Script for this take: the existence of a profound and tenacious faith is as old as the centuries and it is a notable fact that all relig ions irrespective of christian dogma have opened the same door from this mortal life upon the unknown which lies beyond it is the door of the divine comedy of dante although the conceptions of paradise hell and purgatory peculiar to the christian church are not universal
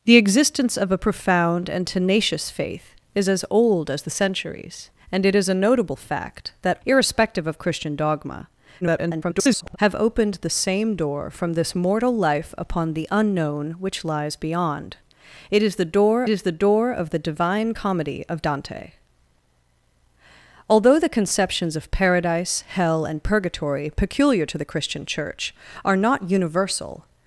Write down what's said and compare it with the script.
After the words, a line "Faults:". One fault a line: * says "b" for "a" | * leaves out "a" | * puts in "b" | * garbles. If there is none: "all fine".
the existence of a profound and tenacious faith is as old as the centuries and it is a notable fact that irrespective of christian dogma [garbled] have opened the same door from this mortal life upon the unknown which lies beyond it is the door is the door of the divine comedy of dante although the conceptions of paradise hell and purgatory peculiar to the christian church are not universal
Faults:
* leaves out "all relig ions"
* garbles
* puts in "is the door"